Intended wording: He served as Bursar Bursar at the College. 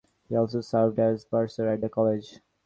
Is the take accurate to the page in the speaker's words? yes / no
no